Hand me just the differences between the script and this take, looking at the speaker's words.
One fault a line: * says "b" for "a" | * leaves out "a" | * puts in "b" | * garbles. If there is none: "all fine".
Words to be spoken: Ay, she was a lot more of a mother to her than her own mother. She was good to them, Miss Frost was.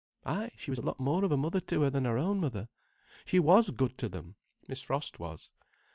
all fine